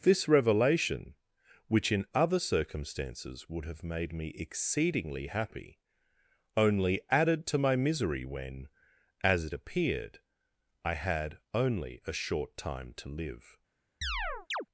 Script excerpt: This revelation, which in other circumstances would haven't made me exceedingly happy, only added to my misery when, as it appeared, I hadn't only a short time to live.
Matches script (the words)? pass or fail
fail